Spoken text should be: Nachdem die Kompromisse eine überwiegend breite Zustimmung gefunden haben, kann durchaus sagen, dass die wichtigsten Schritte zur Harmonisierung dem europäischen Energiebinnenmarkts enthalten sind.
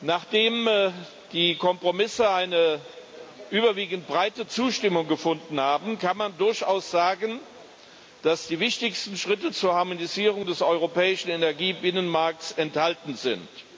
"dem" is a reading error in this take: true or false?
true